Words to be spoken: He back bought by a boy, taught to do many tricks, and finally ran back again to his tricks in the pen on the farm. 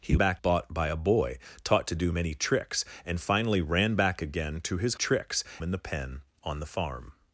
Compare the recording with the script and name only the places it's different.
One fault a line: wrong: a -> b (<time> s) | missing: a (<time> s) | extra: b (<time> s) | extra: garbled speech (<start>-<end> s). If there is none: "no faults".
no faults